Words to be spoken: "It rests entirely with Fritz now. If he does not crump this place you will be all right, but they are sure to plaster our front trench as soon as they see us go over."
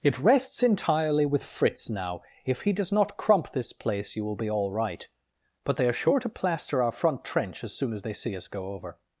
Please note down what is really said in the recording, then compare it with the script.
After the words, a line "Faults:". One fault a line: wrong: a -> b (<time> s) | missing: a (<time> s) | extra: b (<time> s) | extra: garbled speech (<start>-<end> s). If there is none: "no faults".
"It rests entirely with Fritz now. If he does not crump this place you will be all right, but they are sure to plaster our front trench as soon as they see us go over."
Faults:
no faults